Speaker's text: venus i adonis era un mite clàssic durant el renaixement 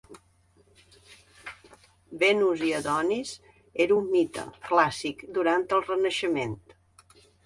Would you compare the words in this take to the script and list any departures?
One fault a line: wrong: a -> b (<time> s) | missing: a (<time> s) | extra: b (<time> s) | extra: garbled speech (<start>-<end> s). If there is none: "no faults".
no faults